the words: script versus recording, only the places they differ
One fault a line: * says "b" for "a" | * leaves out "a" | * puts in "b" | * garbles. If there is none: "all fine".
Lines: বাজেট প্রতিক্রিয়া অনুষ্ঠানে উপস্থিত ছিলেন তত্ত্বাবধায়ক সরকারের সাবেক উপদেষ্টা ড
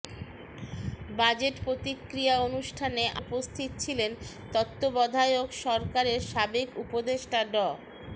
all fine